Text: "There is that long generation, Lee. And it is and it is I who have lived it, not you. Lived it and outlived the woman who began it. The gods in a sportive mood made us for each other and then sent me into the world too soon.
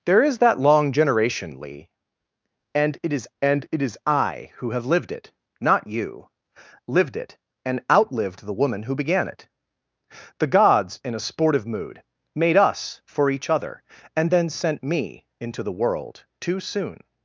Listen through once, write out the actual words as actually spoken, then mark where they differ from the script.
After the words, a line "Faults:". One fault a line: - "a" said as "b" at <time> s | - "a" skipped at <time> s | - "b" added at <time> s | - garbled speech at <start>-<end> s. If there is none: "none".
"There is that long generation, Lee. And it is and it is I who have lived it, not you. Lived it and outlived the woman who began it. The gods in a sportive mood made us for each other and then sent me into the world too soon.
Faults:
none